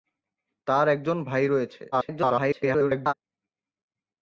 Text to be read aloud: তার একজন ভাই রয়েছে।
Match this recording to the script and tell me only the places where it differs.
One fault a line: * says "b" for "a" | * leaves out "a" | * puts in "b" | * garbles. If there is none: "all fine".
* garbles